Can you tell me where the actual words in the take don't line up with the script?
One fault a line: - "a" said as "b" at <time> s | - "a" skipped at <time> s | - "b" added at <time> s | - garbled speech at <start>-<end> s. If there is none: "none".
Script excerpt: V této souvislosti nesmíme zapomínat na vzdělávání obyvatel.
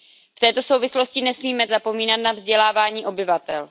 none